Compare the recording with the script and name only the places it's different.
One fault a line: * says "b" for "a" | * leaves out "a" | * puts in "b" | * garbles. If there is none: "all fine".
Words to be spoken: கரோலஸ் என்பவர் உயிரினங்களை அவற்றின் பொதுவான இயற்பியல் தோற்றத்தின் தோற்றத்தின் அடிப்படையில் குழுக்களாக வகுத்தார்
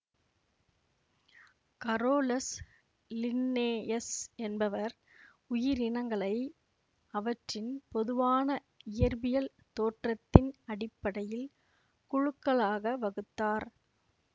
* puts in "லின்னேயஸ்"
* leaves out "தோற்றத்தின்"